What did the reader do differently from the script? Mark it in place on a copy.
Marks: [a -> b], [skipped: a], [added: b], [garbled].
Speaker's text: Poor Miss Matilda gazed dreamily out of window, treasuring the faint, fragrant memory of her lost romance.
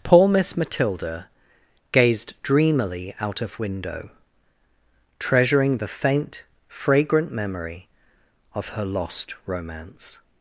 Poor Miss Matilda gazed dreamily out of window, treasuring the faint, fragrant memory of her lost romance.